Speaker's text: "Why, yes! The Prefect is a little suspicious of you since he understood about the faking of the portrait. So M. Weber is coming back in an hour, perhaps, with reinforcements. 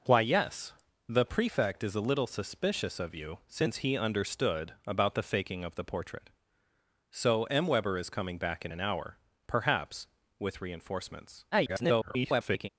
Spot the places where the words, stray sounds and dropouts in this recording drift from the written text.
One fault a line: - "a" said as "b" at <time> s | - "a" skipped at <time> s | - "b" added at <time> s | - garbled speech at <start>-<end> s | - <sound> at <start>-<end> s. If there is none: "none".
- garbled speech at 11.5-12.7 s